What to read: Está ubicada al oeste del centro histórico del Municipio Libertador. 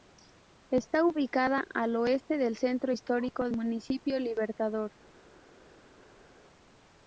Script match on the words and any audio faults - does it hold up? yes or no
no